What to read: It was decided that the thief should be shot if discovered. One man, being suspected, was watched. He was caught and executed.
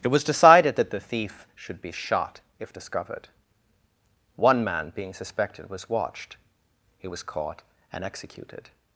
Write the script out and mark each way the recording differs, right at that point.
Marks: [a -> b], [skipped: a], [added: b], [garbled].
It was decided that the thief should be shot if discovered. One man, being suspected, was watched. He was caught and executed.